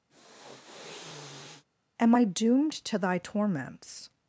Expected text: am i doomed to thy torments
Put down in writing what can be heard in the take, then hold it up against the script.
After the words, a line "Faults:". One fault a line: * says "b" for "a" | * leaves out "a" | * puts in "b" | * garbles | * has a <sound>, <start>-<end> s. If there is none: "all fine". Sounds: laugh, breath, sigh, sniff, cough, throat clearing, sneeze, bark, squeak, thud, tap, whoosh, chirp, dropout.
am i doomed to thy torments
Faults:
* has a sniff, 0.1-1.6 s